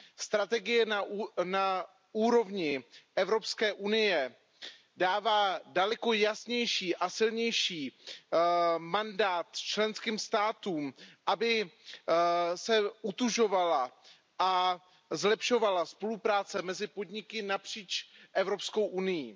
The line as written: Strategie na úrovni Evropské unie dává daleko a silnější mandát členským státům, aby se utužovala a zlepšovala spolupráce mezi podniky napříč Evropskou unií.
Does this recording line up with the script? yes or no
no